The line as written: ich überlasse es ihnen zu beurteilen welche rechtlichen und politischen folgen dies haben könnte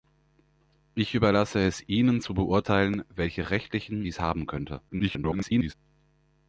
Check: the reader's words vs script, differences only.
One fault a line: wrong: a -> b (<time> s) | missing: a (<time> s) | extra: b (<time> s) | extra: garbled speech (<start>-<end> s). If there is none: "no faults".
missing: und politischen folgen (4.1 s)
extra: garbled speech (4.9-5.7 s)